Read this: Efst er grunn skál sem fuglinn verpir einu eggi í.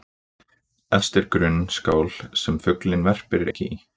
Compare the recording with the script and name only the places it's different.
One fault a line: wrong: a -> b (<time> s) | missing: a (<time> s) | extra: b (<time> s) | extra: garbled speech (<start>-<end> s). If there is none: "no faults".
missing: einu (3.5 s)